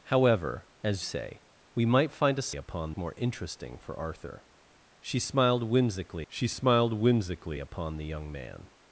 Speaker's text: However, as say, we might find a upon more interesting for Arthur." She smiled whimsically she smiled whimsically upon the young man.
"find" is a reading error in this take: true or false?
false